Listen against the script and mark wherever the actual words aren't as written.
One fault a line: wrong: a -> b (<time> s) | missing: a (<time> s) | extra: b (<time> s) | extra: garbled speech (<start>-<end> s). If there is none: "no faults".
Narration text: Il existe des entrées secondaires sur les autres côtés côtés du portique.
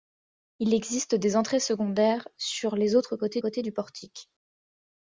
no faults